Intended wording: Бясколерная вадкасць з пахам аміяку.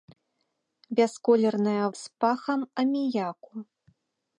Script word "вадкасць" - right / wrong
wrong